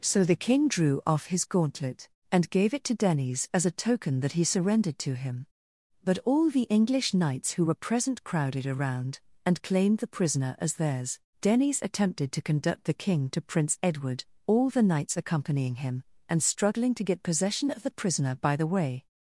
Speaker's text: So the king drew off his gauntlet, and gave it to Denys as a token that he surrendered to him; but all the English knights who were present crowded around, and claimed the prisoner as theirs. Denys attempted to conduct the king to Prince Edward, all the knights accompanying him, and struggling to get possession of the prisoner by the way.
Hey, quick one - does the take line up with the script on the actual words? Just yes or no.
yes